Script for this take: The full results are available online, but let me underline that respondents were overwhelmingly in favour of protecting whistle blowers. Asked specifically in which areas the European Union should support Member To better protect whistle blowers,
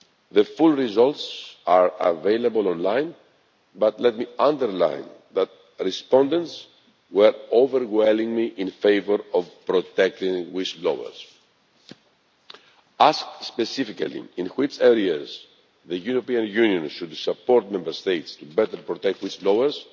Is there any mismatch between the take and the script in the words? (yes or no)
yes